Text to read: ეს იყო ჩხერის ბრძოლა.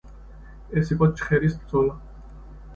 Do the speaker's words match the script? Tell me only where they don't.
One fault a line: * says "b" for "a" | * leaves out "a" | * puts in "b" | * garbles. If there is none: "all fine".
all fine